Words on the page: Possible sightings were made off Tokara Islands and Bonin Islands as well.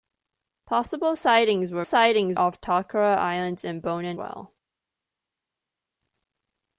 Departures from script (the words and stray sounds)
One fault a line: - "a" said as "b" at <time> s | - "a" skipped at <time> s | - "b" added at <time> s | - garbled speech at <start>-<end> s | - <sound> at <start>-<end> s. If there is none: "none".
- "made" said as "sightings" at 1.8 s
- "Islands as" skipped at 4.2 s